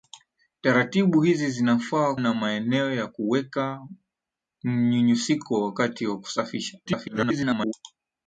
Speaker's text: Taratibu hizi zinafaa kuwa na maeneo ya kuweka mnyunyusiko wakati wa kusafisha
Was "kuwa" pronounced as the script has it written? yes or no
no